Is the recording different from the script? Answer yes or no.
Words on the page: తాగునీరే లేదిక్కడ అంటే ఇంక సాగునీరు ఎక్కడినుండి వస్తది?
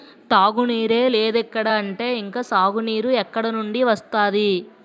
no